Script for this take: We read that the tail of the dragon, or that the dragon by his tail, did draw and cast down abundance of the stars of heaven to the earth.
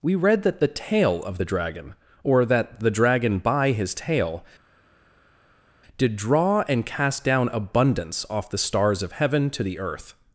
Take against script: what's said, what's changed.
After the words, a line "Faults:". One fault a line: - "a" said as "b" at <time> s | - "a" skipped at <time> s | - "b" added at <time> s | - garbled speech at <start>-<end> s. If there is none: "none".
We read that the tail of the dragon, or that the dragon by his tail, did draw and cast down abundance off the stars of heaven to the earth.
Faults:
- "of" said as "off" at 8.3 s